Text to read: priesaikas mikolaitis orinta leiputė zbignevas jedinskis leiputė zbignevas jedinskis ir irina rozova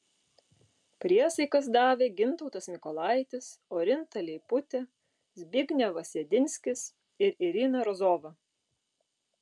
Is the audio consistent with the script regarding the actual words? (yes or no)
no